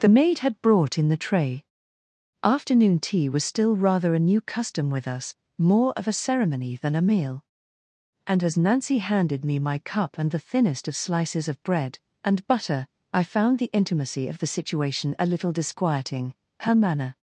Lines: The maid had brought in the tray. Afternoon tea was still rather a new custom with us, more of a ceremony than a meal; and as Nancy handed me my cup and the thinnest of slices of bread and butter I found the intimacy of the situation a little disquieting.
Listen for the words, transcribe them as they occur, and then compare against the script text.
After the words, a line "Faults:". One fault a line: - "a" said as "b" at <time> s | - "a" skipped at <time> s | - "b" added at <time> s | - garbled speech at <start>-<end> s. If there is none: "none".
The maid had brought in the tray. Afternoon tea was still rather a new custom with us, more of a ceremony than a meal; and as Nancy handed me my cup and the thinnest of slices of bread and butter I found the intimacy of the situation a little disquieting. Her manner
Faults:
- "Her manner" added at 16.6 s